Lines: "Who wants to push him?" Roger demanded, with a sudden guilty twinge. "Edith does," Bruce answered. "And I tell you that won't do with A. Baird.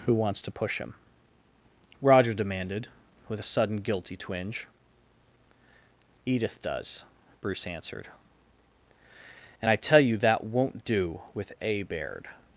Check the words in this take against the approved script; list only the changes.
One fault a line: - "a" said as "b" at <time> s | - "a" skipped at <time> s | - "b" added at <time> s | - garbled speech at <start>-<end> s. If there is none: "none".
none